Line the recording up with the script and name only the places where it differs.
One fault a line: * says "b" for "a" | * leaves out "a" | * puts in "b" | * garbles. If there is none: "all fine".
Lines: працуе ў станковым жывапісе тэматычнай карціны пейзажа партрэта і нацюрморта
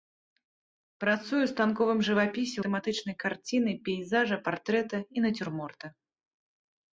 all fine